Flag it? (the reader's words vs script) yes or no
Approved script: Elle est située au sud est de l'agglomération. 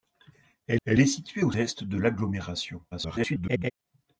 yes